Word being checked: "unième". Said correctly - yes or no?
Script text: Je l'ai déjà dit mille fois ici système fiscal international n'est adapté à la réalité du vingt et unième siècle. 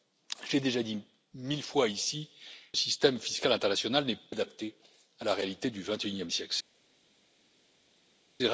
yes